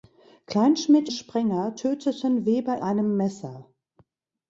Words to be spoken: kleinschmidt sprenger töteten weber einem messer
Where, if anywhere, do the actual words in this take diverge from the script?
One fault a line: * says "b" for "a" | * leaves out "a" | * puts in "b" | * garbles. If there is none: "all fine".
all fine